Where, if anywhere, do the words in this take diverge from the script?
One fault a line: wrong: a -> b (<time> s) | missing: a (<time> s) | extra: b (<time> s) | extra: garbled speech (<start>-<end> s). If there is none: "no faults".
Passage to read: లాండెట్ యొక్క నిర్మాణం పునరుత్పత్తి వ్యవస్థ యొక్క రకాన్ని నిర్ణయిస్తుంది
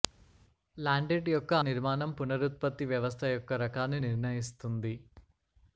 no faults